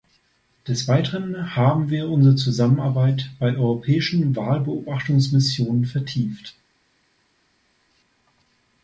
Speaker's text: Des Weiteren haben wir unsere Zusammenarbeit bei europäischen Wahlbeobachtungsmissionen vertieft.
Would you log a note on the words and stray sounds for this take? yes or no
no